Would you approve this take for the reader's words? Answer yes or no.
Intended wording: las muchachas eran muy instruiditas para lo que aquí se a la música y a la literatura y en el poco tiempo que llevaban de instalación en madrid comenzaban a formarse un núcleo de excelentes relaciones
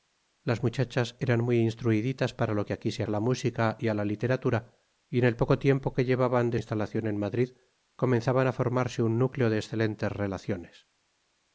yes